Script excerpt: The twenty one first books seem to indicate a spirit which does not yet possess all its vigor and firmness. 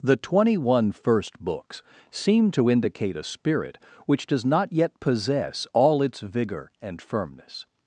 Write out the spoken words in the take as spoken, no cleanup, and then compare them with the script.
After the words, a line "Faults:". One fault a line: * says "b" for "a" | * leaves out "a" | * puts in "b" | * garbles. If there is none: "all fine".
The twenty one first books seem to indicate a spirit which does not yet possess all its vigor and firmness.
Faults:
all fine